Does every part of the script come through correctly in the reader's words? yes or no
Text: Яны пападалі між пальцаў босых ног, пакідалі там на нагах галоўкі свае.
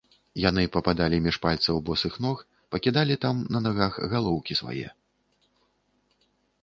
yes